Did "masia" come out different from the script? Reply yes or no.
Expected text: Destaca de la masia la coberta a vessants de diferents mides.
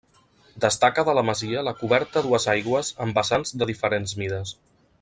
no